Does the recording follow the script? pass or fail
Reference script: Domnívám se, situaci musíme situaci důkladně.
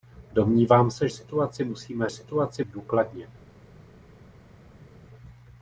pass